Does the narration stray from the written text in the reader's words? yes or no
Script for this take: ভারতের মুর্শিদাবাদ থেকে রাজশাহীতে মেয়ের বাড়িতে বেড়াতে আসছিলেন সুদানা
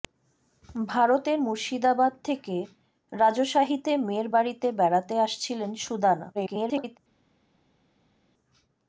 yes